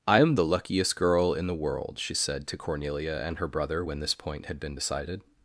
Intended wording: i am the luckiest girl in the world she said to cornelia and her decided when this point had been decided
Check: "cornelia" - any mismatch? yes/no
no